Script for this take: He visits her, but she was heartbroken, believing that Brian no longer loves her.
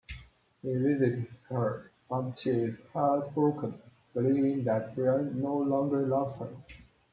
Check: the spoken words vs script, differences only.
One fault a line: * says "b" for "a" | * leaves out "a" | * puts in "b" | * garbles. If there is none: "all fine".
* says "is" for "was"